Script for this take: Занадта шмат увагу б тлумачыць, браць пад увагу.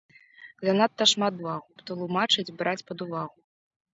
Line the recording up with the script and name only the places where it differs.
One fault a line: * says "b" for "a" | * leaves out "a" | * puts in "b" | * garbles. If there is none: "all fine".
all fine